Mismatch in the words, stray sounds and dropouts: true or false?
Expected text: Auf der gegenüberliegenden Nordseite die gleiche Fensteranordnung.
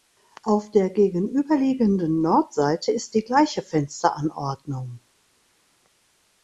true